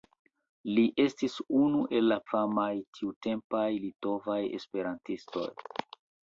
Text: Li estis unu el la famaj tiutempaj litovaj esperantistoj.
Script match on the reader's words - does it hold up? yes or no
yes